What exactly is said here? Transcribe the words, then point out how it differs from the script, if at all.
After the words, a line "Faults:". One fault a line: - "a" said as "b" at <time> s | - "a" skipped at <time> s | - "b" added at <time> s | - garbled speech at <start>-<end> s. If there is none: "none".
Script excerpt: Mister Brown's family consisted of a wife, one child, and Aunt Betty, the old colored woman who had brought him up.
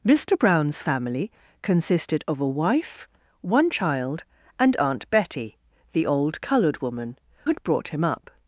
Mister Brown's family consisted of a wife, one child, and Aunt Betty, the old colored woman had brought him up.
Faults:
- "who" skipped at 7.2 s